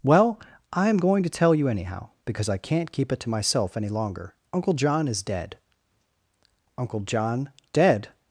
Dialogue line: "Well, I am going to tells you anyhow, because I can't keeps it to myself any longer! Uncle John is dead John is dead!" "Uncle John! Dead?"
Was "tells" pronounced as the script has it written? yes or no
no